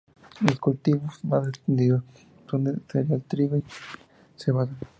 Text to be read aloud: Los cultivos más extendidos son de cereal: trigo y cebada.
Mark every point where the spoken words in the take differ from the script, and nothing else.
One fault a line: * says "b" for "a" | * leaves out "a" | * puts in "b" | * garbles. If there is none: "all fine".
all fine